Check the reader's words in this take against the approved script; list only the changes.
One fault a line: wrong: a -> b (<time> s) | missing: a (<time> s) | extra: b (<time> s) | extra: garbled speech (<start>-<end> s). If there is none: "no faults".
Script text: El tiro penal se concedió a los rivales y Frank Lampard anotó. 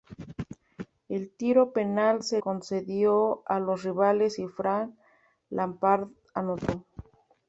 no faults